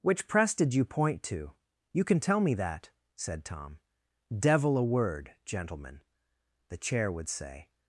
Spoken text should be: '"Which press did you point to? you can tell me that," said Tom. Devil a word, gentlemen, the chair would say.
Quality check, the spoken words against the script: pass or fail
pass